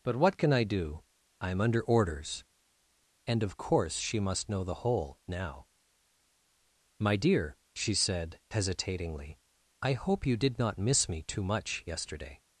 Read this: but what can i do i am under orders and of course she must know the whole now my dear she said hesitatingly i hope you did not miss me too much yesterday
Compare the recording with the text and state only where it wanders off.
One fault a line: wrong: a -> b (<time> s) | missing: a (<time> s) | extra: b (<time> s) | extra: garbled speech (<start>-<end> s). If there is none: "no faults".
no faults